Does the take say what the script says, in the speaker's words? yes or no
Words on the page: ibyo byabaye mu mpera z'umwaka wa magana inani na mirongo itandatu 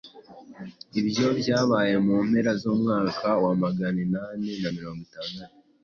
yes